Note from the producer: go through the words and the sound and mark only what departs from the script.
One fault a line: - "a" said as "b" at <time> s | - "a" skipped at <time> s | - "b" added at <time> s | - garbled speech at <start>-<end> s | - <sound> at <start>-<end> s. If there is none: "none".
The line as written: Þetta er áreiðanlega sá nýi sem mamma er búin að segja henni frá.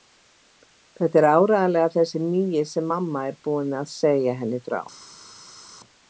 - "sá" said as "þessi" at 2.0 s